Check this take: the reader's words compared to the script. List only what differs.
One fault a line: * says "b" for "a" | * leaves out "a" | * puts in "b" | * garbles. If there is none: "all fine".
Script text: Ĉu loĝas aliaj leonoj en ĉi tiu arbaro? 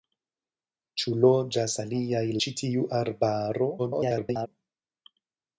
* leaves out "leonoj en"
* garbles